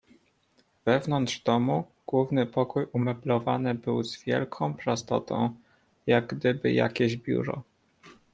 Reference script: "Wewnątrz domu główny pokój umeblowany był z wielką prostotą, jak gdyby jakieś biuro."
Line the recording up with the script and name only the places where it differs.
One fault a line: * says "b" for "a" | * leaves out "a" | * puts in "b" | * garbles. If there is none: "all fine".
all fine